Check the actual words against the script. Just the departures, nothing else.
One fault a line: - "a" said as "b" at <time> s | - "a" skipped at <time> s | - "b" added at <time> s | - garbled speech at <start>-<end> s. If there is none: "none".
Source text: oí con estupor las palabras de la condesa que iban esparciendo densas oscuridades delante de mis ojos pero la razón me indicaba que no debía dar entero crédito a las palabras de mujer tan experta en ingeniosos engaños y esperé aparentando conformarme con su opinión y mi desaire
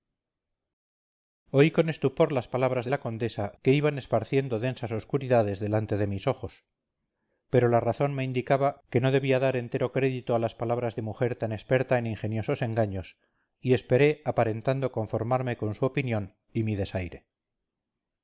none